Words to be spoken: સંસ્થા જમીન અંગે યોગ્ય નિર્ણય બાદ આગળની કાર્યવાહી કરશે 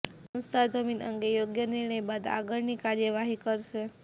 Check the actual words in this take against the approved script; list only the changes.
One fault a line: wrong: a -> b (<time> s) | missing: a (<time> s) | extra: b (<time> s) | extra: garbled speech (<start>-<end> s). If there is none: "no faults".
no faults